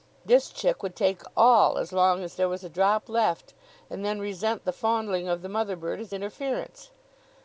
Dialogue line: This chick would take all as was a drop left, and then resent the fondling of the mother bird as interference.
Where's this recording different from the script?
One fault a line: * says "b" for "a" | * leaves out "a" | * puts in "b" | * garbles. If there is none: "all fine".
* puts in "long as there"